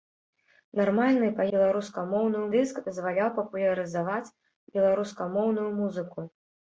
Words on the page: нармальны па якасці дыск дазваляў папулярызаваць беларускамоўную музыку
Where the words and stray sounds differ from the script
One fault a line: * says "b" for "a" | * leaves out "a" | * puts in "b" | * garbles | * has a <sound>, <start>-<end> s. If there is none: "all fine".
* says "беларускамоўную" for "якасці"